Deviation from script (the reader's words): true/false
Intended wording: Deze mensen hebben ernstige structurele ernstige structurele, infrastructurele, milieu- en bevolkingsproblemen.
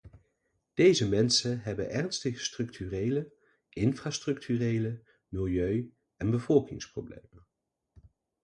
true